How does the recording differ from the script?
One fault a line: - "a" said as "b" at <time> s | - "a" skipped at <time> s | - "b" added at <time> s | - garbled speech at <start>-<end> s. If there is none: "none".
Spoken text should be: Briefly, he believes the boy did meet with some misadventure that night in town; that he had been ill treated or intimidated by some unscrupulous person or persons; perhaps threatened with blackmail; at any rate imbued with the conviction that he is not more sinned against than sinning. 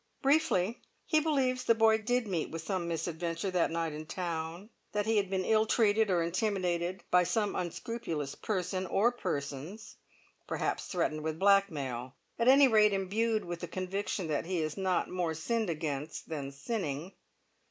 none